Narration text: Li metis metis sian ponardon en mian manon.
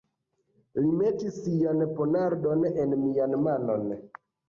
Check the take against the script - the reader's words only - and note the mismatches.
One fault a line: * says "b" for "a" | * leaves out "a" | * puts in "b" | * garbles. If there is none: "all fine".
* leaves out "metis"